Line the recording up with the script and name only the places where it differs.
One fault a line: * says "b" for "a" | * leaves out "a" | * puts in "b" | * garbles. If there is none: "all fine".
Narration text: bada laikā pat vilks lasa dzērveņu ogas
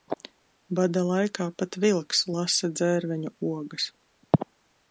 all fine